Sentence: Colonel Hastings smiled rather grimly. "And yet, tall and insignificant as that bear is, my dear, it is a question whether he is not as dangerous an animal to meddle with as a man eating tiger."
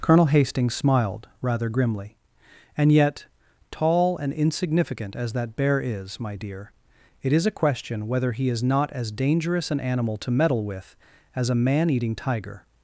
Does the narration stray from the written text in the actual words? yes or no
no